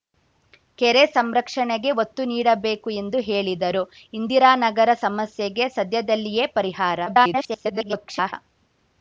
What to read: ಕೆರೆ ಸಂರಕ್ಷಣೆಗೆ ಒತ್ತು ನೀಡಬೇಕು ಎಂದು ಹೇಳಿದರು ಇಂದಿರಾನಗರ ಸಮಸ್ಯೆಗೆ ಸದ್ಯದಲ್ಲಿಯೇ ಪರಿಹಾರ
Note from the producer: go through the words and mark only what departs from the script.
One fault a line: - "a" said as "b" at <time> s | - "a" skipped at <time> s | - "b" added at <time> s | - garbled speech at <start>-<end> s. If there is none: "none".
- garbled speech at 7.1-8.3 s